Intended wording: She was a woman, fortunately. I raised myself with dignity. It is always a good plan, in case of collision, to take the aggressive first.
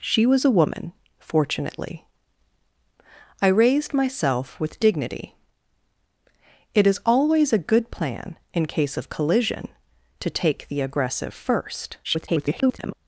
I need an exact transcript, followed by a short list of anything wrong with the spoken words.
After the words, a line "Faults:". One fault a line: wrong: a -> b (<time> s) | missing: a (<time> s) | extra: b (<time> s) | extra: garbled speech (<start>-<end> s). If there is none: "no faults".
She was a woman, fortunately. I raised myself with dignity. It is always a good plan, in case of collision, to take the aggressive first. [garbled]
Faults:
extra: garbled speech (12.0-12.9 s)